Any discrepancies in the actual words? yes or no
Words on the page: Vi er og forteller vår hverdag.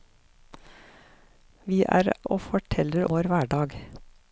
no